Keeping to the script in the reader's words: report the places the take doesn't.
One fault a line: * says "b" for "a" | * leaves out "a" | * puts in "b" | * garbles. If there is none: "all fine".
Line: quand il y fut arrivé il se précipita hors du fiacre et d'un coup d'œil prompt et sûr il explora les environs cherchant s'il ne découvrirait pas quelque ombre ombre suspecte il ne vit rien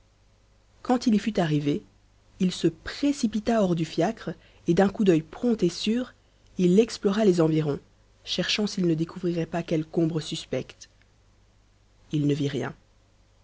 * leaves out "ombre"